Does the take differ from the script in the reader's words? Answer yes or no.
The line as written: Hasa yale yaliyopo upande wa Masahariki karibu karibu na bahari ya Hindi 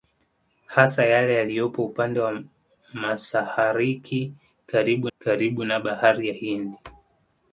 no